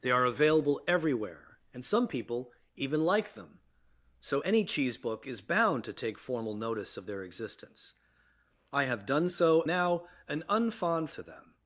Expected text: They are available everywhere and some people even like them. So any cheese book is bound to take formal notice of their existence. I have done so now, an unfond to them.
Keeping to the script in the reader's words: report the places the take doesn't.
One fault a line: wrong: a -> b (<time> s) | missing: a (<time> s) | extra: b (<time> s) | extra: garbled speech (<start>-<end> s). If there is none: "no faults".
no faults